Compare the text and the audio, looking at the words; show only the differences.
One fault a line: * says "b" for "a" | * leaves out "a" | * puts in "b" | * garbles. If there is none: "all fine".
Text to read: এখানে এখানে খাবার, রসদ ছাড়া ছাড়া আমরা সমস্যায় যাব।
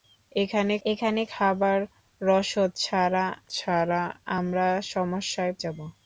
all fine